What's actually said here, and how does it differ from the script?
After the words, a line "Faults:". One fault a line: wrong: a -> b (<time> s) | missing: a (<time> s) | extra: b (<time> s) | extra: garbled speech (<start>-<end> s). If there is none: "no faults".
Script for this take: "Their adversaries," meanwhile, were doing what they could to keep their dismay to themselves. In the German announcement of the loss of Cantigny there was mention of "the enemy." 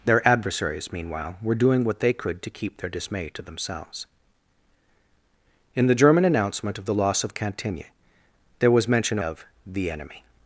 "Their adversaries," meanwhile, were doing what they could to keep their dismay to themselves. In the German announcement of the loss of Cantigny there was mention of "the enemy."
Faults:
no faults